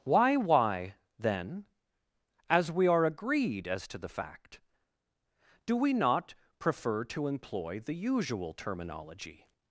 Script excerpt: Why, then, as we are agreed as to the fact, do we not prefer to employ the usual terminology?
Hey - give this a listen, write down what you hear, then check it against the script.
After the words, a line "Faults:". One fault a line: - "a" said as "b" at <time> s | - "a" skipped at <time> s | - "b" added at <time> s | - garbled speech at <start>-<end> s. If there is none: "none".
Why why, then, as we are agreed as to the fact, do we not prefer to employ the usual terminology?
Faults:
- "why" added at 0.3 s